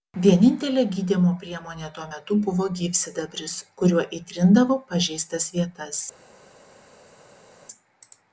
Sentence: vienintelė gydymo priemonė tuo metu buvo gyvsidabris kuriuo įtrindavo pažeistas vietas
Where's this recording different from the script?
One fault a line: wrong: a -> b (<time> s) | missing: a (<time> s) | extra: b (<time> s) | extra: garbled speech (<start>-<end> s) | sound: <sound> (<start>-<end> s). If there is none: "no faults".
no faults